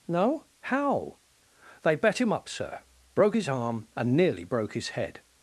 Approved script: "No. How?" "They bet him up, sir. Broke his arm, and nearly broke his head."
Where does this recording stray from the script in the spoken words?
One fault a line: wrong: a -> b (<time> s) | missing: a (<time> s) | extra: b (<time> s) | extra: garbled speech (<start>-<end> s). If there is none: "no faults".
no faults